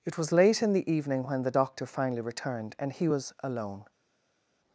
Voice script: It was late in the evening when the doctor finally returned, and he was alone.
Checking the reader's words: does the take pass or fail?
pass